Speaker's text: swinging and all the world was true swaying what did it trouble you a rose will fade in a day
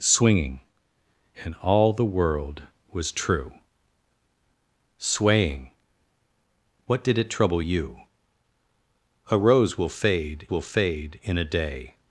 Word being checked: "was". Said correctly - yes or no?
yes